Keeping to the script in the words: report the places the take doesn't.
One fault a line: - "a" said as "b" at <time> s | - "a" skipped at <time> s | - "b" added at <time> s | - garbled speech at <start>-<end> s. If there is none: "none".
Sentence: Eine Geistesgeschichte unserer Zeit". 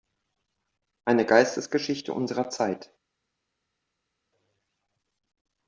none